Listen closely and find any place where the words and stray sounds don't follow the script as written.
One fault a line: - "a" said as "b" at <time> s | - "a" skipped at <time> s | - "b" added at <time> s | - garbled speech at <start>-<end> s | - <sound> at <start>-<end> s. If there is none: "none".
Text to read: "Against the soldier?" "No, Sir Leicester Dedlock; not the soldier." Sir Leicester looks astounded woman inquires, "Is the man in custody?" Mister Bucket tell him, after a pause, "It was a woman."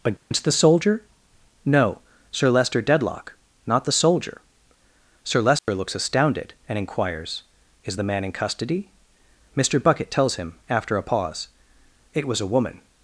- dropout at 0.2-0.3 s
- dropout at 5.6-5.7 s
- "woman" said as "and" at 6.7 s
- "tell" said as "tells" at 10.1 s